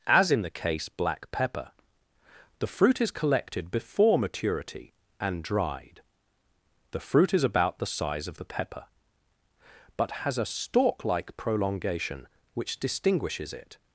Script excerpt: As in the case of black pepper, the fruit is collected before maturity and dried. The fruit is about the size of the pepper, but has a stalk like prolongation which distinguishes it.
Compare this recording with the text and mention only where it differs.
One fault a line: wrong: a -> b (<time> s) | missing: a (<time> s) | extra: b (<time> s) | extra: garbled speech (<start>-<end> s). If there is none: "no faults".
missing: of (0.9 s)